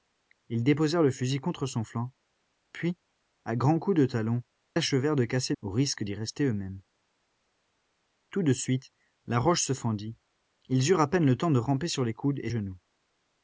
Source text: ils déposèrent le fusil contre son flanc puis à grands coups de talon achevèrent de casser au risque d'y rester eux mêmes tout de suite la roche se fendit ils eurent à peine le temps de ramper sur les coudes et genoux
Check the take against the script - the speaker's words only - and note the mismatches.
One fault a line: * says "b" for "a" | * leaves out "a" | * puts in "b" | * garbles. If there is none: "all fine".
all fine